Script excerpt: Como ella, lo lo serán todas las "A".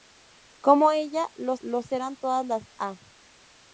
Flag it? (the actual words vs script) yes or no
no